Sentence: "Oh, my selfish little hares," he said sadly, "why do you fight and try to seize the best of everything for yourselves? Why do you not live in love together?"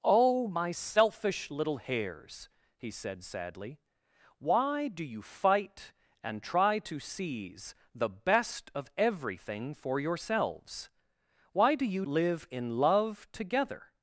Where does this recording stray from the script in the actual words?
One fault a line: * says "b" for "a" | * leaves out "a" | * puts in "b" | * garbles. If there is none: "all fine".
* leaves out "not"